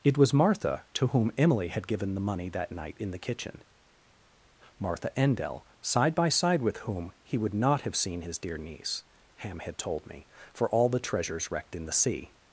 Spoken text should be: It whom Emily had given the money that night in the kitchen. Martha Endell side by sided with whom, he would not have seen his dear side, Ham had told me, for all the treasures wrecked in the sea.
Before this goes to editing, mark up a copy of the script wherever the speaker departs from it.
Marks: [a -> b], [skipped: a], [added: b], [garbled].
It [added: was Martha to] whom Emily had given the money that night in the kitchen. Martha Endell side by [sided -> side] with whom, he would not have seen his dear [side, -> niece] Ham had told me, for all the treasures wrecked in the sea.